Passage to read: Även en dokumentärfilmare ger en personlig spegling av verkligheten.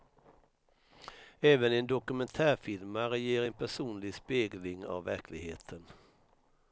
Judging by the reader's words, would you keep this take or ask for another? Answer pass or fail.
pass